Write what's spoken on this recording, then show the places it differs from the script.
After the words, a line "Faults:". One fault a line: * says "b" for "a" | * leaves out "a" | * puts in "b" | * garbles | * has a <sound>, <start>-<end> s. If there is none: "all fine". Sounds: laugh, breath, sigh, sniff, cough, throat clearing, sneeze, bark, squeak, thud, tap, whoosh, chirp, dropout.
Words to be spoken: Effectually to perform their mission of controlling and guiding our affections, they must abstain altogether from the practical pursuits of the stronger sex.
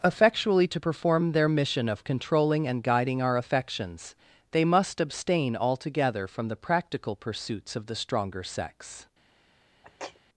Effectually to perform their mission of controlling and guiding our affections, they must abstain altogether from the practical pursuits of the stronger sex.
Faults:
* has a sneeze, 9.8-10.2 s